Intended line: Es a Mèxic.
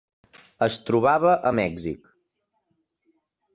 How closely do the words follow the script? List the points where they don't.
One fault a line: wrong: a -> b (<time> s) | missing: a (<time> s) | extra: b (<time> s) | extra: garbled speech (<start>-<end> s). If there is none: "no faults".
extra: trobava (0.9 s)